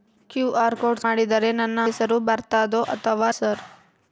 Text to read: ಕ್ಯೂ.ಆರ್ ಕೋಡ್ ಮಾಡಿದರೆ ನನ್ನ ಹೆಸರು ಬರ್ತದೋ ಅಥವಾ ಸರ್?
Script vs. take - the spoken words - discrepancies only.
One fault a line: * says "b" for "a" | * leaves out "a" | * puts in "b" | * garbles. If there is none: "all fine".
all fine